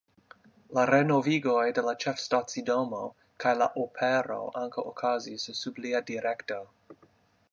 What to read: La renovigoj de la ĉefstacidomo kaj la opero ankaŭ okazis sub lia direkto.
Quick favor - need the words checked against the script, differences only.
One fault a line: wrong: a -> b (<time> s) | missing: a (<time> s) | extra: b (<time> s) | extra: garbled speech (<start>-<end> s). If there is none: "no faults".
no faults